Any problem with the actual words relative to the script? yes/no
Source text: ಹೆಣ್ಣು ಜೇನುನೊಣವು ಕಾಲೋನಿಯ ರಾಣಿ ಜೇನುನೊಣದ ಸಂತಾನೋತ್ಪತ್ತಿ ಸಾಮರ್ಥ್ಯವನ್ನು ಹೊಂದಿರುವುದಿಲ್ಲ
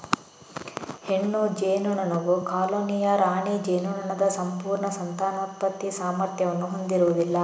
yes